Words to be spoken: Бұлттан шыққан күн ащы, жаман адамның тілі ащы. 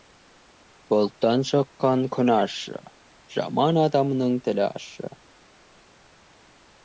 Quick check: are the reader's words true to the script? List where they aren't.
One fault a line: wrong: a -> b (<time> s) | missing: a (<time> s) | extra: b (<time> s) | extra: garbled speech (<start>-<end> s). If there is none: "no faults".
no faults